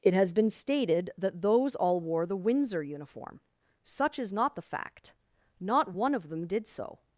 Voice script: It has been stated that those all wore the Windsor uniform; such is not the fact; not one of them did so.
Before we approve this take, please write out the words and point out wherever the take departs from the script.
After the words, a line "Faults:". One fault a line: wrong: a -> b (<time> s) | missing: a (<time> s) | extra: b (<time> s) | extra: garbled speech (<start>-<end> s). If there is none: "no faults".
It has been stated that those all wore the Windsor uniform; such is not the fact; not one of them did so.
Faults:
no faults